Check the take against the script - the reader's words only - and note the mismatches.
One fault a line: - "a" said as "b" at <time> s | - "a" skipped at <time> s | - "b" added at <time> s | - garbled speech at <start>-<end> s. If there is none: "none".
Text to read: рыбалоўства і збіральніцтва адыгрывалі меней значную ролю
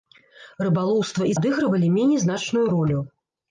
- "збіральніцтва" skipped at 1.3 s